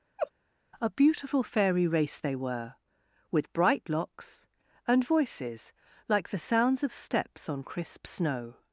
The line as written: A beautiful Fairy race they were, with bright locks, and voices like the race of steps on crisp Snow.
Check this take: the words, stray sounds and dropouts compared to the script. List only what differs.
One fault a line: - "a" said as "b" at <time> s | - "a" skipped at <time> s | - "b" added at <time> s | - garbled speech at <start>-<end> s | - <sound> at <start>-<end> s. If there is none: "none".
- laugh at 0.2-0.3 s
- "race" said as "sounds" at 6.4 s